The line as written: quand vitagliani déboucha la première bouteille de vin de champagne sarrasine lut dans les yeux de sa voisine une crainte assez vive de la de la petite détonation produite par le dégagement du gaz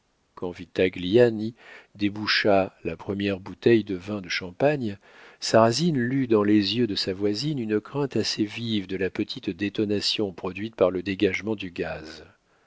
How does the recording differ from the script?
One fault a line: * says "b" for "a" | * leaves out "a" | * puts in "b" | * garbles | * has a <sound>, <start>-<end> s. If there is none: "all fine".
* leaves out "de la"